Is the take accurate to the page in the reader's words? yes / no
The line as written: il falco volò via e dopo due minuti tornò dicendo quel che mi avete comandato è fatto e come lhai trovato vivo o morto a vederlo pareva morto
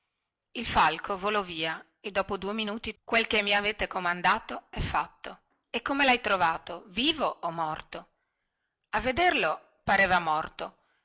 no